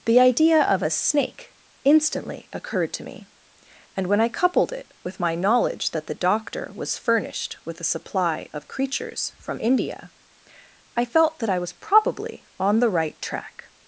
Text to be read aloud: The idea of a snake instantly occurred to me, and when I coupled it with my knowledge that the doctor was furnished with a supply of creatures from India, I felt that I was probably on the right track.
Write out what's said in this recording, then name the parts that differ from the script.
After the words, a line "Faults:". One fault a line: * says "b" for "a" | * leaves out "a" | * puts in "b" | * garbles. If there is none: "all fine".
The idea of a snake instantly occurred to me, and when I coupled it with my knowledge that the doctor was furnished with a supply of creatures from India, I felt that I was probably on the right track.
Faults:
all fine